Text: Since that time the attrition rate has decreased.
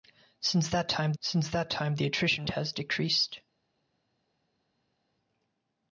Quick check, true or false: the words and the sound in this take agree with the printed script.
false